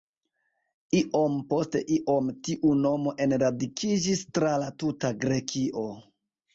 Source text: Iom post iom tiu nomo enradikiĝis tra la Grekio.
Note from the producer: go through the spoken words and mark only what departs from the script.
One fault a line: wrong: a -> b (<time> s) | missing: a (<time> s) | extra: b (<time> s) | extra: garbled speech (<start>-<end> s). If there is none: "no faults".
extra: tuta (4.8 s)